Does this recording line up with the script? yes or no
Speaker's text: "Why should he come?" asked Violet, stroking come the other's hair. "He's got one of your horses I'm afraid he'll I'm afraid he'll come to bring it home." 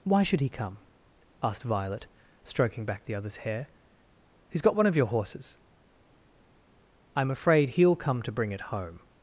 no